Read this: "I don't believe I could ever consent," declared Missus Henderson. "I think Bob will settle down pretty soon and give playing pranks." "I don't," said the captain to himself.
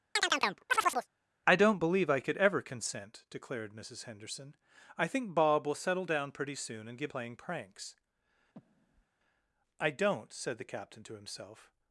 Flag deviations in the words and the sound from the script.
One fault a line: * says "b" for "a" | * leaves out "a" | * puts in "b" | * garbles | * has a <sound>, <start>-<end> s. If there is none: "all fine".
* has a chirp, 0.2-1.1 s
* has a breath, 8.5-9.1 s